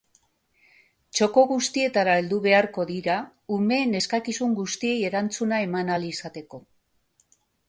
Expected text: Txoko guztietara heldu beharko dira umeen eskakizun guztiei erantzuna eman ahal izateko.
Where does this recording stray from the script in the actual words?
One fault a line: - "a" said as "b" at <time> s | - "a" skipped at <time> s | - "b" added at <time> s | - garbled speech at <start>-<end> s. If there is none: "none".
none